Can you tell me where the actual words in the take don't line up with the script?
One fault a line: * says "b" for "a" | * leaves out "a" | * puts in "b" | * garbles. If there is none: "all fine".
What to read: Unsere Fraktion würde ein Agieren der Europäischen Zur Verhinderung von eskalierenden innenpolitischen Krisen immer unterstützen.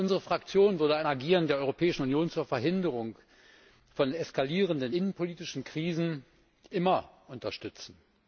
* puts in "Union"